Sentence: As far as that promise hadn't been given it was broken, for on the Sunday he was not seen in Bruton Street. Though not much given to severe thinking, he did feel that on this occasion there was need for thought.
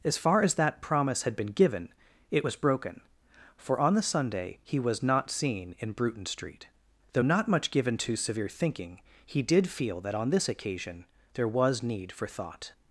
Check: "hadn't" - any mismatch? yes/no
yes